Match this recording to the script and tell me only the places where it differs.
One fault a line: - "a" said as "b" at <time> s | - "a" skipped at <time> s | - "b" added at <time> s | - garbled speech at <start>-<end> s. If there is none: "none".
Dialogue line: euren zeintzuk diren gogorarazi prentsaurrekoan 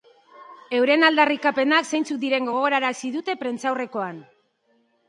- "aldarrikapenak" added at 1.1 s
- "dute" added at 3.2 s